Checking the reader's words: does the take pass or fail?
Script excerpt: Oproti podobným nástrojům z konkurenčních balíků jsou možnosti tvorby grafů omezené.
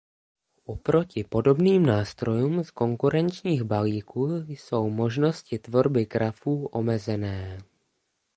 pass